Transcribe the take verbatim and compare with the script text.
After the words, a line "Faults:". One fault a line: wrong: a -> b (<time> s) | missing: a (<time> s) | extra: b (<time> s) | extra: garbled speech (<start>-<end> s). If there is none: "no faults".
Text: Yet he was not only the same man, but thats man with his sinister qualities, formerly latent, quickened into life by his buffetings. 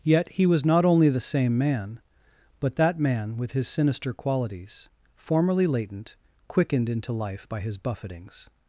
Yet he was not only the same man, but that man with his sinister qualities, formerly latent, quickened into life by his buffetings.
Faults:
wrong: thats -> that (2.8 s)